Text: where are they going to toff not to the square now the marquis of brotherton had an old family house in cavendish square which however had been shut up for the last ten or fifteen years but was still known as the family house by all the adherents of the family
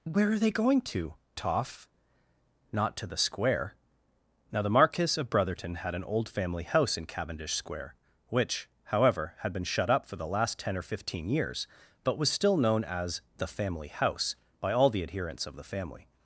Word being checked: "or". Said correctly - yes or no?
yes